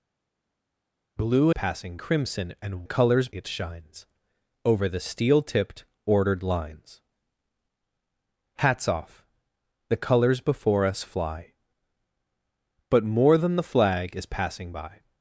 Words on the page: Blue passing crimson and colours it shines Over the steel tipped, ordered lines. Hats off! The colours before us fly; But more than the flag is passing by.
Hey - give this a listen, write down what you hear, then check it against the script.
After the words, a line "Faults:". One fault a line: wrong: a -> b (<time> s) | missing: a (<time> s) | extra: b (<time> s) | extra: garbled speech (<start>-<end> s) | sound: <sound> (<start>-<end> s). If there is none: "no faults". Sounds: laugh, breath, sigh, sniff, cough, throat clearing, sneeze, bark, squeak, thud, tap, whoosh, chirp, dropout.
Blue passing crimson and colours it shines Over the steel tipped, ordered lines. Hats off! The colours before us fly; But more than the flag is passing by.
Faults:
no faults